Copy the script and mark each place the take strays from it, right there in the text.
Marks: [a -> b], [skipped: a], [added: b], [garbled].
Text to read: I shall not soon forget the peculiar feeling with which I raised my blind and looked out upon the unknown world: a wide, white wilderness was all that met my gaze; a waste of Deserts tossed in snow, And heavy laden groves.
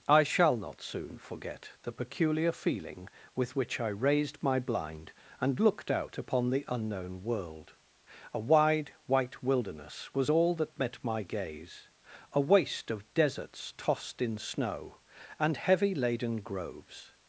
I shall not soon forget the peculiar feeling with which I raised my blind and looked out upon the unknown world: a wide, white wilderness was all that met my gaze; a waste of Deserts tossed in snow, And heavy laden groves.